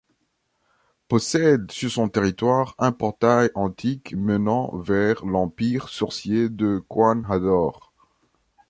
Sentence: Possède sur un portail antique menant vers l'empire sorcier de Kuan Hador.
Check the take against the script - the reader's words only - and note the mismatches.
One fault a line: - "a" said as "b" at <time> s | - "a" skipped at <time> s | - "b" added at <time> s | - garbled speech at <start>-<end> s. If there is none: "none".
- "son territoire" added at 1.9 s